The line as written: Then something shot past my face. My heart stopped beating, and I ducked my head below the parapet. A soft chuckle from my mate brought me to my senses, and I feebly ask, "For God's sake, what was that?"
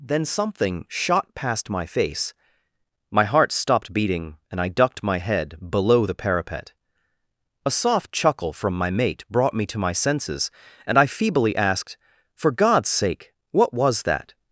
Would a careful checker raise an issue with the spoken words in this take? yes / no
yes